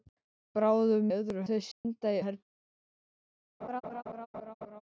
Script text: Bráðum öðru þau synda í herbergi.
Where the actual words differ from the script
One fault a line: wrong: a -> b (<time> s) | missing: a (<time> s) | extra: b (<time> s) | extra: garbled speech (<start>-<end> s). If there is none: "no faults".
no faults